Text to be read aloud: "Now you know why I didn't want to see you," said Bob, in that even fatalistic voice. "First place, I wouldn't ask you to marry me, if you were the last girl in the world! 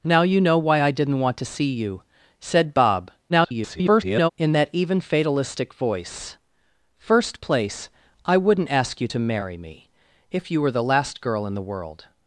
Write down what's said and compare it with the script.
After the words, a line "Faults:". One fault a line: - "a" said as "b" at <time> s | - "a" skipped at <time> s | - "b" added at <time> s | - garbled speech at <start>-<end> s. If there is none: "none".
"Now you know why I didn't want to see you," said Bob, [garbled] in that even fatalistic voice. "First place, I wouldn't ask you to marry me, if you were the last girl in the world!
Faults:
- garbled speech at 3.3-4.3 s